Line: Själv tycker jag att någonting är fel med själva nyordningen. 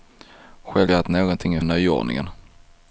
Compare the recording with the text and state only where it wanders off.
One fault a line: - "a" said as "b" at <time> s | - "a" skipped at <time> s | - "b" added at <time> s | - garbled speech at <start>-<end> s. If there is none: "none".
- "tycker" skipped at 0.9 s
- "fel med själva" skipped at 1.6 s